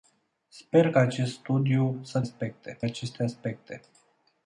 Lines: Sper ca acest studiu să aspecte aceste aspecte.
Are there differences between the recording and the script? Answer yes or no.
no